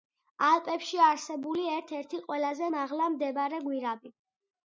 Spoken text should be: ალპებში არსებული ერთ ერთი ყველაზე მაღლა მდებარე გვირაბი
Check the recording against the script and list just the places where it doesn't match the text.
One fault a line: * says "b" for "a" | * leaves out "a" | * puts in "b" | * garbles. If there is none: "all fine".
all fine